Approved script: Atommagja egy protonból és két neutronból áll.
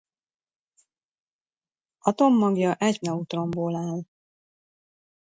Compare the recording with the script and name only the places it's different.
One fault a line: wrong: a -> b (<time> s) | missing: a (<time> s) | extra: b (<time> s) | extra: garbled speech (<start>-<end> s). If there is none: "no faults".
missing: protonból és két (3.0 s)